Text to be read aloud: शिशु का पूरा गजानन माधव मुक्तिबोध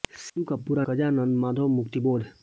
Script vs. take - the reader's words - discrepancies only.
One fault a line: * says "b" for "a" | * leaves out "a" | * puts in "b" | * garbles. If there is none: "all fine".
all fine